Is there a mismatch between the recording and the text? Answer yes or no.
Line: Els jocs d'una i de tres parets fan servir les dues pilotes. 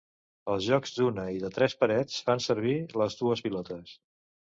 no